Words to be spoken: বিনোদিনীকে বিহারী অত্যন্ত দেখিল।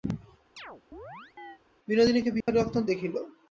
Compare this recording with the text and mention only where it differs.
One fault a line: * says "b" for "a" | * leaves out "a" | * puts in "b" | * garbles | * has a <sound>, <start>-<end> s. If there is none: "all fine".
* has a chirp, 0.6-1.6 s
* has a dropout, 2.4-2.5 s